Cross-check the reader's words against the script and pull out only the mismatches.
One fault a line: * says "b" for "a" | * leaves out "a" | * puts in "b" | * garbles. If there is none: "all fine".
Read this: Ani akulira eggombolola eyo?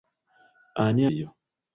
* leaves out "akulira eggombolola"